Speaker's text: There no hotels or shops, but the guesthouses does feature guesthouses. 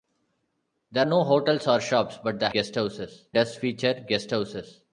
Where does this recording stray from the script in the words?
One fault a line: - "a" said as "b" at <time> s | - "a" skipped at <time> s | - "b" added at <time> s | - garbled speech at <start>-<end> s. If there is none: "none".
none